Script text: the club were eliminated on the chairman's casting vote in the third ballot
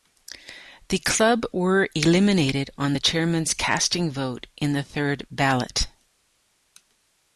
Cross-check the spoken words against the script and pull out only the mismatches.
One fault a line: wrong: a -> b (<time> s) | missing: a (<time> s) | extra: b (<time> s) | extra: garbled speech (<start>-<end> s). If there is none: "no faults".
no faults